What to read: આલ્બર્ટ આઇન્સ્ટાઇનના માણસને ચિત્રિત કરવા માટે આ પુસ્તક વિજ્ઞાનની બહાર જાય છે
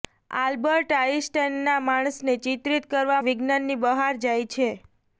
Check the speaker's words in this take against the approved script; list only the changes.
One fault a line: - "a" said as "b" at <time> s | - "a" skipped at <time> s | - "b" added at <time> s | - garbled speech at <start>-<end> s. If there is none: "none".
- "માટે આ પુસ્તક" skipped at 3.2 s